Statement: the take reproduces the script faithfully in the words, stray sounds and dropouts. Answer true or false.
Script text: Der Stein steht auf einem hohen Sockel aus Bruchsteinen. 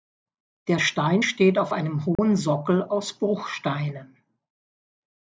false